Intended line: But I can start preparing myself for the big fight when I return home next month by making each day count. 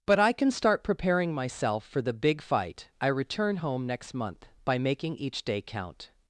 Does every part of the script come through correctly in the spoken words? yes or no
no